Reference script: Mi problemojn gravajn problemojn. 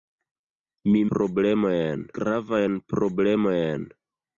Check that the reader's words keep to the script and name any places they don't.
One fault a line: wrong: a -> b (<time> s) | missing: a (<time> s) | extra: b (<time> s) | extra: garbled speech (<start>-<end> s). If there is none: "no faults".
no faults